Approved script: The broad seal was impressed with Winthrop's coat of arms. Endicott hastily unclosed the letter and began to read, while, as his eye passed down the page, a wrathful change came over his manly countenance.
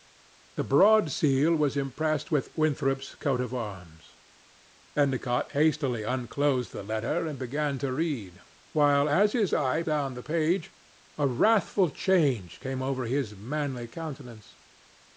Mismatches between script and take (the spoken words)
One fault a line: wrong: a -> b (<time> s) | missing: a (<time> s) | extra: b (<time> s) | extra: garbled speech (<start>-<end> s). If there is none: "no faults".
missing: passed (9.8 s)